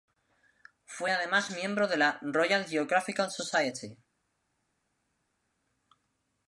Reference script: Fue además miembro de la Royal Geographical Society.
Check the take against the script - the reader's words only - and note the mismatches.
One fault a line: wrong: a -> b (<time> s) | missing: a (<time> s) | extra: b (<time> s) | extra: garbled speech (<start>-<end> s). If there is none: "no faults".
no faults